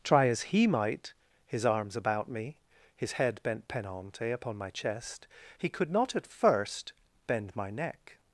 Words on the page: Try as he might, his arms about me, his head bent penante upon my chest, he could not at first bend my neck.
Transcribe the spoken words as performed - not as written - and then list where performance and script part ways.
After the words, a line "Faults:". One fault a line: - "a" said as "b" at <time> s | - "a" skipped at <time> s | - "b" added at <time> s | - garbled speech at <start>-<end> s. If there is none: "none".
Try as he might, his arms about me, his head bent penante upon my chest, he could not at first bend my neck.
Faults:
none